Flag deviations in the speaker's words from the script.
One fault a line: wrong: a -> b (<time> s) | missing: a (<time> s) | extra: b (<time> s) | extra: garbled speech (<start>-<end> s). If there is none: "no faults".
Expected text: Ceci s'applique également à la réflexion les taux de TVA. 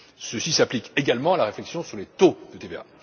extra: sur (1.8 s)